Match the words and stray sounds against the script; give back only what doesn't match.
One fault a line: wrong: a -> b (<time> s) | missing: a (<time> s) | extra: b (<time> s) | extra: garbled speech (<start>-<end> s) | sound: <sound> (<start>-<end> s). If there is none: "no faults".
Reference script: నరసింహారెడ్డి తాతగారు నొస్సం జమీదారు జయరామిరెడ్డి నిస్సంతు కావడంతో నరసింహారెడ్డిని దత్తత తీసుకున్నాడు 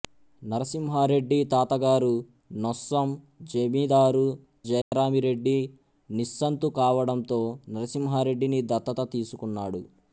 sound: dropout (4.8-4.9 s)